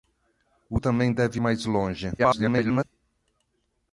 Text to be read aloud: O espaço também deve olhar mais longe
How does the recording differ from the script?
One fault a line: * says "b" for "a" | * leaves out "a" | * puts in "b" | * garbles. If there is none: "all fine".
* leaves out "espaço"
* leaves out "olhar"
* garbles